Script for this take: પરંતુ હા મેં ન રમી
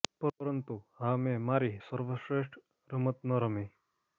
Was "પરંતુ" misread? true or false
false